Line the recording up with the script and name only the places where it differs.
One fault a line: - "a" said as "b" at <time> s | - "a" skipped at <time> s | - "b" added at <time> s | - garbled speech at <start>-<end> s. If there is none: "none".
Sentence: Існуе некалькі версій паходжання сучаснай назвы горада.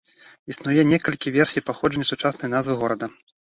none